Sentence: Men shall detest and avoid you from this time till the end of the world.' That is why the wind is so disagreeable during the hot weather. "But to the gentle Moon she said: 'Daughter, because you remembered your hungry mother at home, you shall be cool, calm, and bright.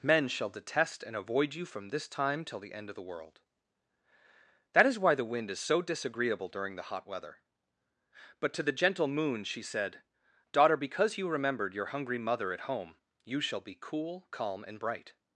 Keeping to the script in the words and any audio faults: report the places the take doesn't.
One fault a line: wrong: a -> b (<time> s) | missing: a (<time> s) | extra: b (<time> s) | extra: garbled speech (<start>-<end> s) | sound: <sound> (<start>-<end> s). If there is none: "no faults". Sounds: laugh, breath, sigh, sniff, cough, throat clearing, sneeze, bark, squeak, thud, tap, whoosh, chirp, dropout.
no faults